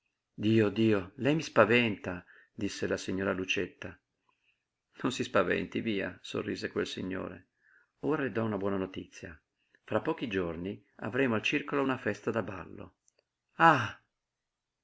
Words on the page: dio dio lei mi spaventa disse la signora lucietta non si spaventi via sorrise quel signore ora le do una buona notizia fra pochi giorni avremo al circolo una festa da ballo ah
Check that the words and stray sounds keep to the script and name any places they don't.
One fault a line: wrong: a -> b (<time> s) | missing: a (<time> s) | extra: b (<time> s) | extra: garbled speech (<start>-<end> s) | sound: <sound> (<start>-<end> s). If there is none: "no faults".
no faults